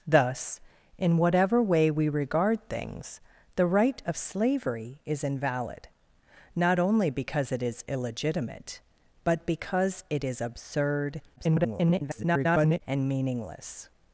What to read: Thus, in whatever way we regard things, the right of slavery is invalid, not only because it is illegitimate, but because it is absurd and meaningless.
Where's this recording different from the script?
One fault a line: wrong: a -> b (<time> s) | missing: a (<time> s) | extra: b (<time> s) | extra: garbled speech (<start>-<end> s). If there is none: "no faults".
extra: garbled speech (11.4-12.8 s)